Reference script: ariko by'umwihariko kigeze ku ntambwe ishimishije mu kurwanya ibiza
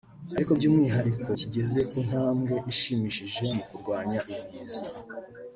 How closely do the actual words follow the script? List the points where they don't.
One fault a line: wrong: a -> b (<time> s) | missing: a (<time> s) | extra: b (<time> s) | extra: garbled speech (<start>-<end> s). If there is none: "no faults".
no faults